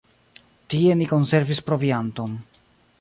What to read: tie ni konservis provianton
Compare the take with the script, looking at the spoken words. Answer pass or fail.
pass